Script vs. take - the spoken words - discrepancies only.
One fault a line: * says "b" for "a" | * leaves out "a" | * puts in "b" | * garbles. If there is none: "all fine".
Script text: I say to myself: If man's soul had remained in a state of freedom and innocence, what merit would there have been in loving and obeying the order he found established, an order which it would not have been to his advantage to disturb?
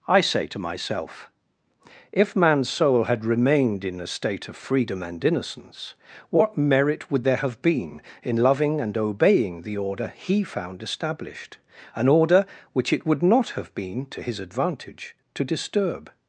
all fine